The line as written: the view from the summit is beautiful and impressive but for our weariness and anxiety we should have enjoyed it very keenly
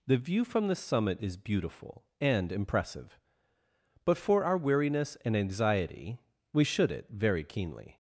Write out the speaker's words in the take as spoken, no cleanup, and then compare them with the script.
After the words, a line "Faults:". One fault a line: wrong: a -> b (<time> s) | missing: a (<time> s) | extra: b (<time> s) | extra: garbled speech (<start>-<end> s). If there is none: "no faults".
the view from the summit is beautiful and impressive but for our weariness and anxiety we should it very keenly
Faults:
missing: have enjoyed (6.9 s)